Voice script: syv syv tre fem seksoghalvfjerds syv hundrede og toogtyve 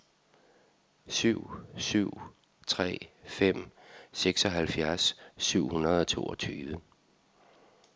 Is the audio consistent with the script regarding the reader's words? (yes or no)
yes